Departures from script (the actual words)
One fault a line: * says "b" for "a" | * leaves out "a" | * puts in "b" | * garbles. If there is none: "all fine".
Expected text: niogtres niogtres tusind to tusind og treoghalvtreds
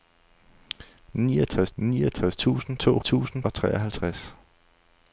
all fine